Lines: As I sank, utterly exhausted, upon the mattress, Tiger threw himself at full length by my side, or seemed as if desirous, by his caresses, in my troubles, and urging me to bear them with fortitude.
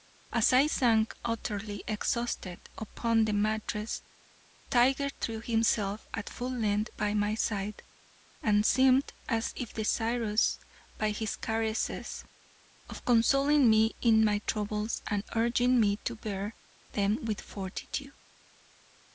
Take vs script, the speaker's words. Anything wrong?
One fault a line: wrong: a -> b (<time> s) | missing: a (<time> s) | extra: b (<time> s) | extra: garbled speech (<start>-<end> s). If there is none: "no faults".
wrong: or -> and (8.4 s)
extra: of consoling me (12.9 s)